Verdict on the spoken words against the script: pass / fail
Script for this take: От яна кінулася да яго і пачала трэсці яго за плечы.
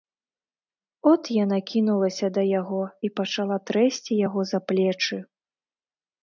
pass